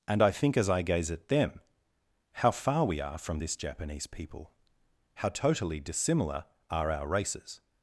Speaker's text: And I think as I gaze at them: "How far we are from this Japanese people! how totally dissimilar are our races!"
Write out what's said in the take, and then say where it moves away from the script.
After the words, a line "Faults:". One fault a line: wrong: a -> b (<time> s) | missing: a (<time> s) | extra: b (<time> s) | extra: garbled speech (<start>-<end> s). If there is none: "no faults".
And I think as I gaze at them: "How far we are from this Japanese people! how totally dissimilar are our races!"
Faults:
no faults